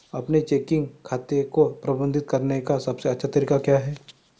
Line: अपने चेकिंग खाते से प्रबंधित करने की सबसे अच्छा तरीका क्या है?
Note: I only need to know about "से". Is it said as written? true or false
false